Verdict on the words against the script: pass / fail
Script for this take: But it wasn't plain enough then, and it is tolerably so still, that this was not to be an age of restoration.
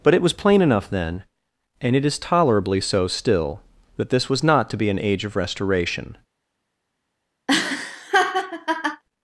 fail